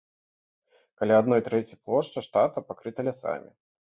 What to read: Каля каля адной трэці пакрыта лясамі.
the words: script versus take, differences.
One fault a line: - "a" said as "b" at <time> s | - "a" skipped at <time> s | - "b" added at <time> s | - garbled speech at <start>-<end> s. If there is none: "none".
- "каля" skipped at 1.2 s
- "плошчы штата" added at 1.9 s